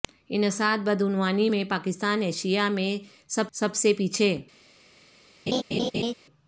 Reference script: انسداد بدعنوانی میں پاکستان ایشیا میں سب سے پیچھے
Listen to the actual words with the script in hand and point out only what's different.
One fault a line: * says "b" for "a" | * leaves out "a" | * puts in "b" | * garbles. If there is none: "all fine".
* puts in "سب"